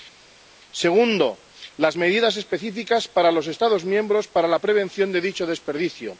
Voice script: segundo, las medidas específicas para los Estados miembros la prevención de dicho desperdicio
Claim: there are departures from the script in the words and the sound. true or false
true